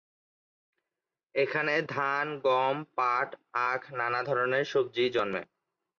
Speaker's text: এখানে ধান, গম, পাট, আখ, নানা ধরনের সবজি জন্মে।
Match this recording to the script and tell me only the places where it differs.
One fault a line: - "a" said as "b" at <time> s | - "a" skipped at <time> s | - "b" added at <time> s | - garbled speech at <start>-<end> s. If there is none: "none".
none